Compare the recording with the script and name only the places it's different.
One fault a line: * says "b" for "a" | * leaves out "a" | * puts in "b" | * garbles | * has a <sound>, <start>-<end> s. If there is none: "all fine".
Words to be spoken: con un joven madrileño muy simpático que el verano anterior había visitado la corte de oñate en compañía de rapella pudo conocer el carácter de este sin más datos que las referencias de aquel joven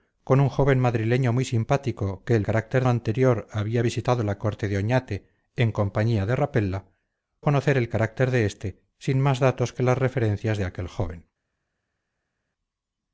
* says "carácter" for "verano"
* leaves out "pudo"